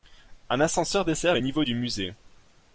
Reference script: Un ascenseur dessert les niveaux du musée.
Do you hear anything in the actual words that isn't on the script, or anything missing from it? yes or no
no